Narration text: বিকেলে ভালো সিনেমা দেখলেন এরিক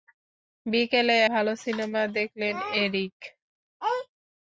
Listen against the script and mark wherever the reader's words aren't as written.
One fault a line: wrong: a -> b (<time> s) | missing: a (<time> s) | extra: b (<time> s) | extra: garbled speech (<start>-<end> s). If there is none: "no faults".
no faults